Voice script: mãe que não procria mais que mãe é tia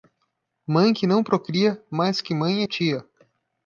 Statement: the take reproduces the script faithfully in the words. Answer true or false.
true